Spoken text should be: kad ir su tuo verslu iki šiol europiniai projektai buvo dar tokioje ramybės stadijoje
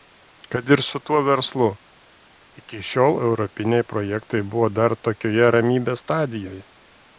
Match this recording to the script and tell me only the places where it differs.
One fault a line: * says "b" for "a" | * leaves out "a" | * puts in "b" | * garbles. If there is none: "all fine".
all fine